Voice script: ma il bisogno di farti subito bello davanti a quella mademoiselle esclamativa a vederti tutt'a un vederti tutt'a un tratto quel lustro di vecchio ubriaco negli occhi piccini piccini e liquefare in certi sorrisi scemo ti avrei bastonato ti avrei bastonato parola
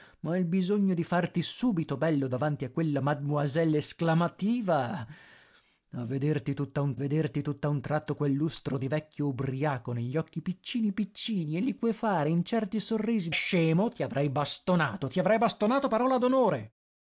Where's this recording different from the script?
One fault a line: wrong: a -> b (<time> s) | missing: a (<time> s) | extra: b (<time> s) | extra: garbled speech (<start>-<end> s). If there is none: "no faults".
no faults